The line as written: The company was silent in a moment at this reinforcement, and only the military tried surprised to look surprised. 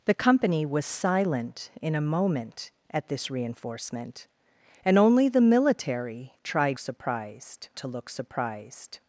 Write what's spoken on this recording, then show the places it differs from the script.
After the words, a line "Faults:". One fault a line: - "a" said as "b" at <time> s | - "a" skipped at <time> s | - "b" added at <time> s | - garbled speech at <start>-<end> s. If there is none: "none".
The company was silent in a moment at this reinforcement, and only the military tried surprised to look surprised.
Faults:
none